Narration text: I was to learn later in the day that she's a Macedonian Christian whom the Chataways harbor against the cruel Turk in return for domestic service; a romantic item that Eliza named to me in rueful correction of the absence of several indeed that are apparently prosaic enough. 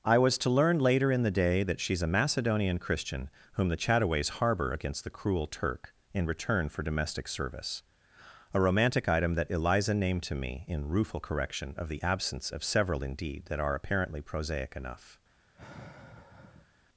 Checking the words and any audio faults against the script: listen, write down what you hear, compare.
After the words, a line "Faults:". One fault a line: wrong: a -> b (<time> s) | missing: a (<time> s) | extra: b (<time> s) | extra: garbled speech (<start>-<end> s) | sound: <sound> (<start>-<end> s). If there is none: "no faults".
I was to learn later in the day that she's a Macedonian Christian whom the Chataways harbor against the cruel Turk in return for domestic service; a romantic item that Eliza named to me in rueful correction of the absence of several indeed that are apparently prosaic enough.
Faults:
sound: sigh (15.6-16.7 s)